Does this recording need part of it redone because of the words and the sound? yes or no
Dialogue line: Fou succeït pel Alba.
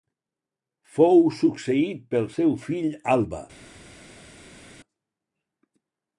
yes